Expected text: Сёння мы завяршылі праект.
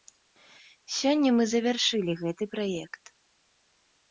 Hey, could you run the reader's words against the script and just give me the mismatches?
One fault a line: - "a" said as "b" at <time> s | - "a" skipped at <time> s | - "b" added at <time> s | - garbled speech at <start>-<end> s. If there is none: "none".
- "гэты" added at 2.2 s